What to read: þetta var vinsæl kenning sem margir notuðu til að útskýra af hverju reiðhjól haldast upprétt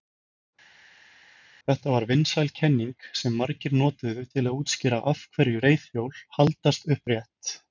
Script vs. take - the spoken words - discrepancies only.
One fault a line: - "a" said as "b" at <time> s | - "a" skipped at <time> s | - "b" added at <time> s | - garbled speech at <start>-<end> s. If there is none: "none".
none